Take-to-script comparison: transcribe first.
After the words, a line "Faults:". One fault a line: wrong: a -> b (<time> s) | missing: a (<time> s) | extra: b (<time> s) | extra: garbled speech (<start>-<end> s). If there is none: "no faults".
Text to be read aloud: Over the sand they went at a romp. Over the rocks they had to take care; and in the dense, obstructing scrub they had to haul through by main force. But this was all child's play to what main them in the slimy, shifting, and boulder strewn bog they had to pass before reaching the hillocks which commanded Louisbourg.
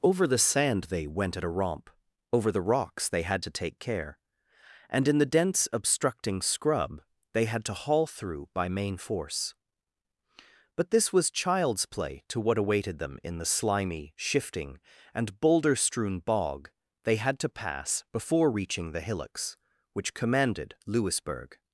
Over the sand they went at a romp. Over the rocks they had to take care; and in the dense, obstructing scrub they had to haul through by main force. But this was child's play to what awaited them in the slimy, shifting, and boulder strewn bog they had to pass before reaching the hillocks which commanded Louisbourg.
Faults:
missing: all (11.3 s)
wrong: main -> awaited (12.6 s)